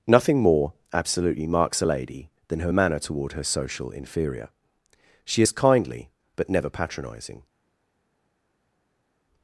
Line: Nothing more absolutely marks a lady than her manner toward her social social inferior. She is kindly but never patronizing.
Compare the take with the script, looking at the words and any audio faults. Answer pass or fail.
fail